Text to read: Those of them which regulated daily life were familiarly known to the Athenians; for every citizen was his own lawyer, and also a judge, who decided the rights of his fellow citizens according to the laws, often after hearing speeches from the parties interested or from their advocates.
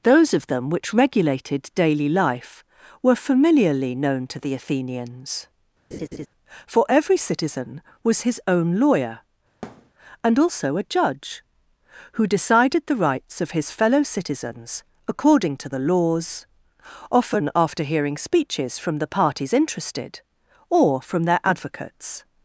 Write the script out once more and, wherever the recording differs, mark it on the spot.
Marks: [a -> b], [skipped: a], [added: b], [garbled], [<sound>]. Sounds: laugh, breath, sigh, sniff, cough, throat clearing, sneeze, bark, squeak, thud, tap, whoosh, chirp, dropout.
Those of them which regulated daily life were familiarly known to the Athenians; [laugh] for every citizen was his own lawyer, [thud] and also a judge, who decided the rights of his fellow citizens according to the laws, often after hearing speeches from the parties interested or from their advocates.